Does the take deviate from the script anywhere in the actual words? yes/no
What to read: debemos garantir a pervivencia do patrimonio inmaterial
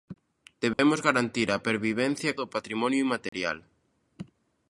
no